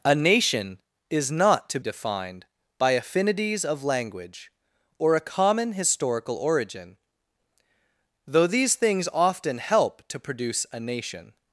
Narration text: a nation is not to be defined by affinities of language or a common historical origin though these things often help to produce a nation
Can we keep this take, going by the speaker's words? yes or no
no